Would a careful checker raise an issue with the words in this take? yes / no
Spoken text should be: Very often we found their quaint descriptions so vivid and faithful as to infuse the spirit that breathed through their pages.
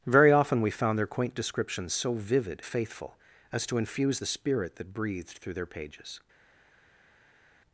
yes